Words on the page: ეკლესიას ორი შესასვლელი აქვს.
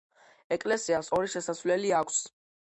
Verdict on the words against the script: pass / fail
pass